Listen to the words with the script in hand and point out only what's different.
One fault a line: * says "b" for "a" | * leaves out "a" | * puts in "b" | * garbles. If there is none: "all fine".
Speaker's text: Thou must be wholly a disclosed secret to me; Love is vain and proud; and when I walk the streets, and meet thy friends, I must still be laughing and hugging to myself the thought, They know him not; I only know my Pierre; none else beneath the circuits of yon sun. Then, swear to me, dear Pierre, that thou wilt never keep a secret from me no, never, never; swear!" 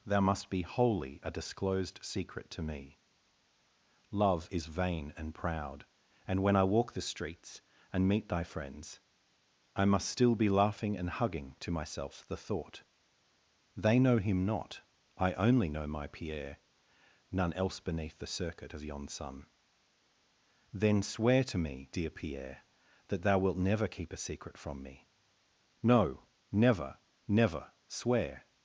* says "circuit" for "circuits"